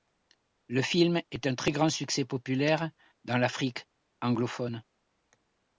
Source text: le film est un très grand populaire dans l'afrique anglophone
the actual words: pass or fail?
fail